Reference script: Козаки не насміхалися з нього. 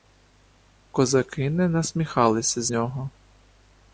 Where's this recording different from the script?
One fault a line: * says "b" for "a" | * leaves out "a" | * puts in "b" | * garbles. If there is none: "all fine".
all fine